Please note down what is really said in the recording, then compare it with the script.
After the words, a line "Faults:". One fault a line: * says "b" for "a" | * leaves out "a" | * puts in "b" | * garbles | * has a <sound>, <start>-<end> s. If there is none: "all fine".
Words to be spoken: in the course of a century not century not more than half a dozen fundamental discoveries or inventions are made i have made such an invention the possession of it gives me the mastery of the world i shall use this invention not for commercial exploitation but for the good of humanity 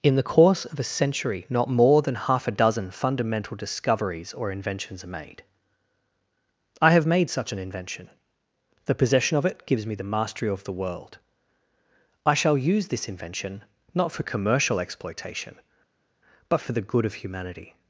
in the course of a century not more than half a dozen fundamental discoveries or inventions are made i have made such an invention the possession of it gives me the mastery of the world i shall use this invention not for commercial exploitation but for the good of humanity
Faults:
* leaves out "century not"